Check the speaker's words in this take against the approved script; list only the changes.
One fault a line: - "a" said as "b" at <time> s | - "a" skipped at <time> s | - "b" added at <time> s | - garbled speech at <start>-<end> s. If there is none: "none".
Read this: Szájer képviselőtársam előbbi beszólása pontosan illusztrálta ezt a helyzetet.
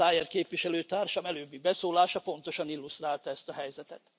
none